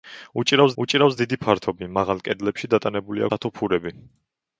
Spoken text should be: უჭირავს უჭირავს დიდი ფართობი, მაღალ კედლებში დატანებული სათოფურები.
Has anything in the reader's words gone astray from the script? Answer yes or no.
no